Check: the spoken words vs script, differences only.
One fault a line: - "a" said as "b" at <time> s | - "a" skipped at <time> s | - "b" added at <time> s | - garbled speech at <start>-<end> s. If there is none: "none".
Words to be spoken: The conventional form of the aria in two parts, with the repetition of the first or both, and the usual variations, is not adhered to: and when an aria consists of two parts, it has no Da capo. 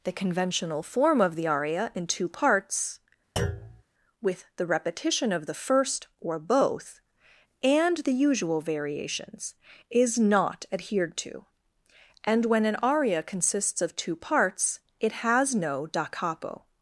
none